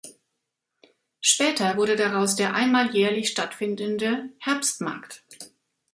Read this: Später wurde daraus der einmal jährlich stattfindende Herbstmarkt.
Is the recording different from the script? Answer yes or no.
no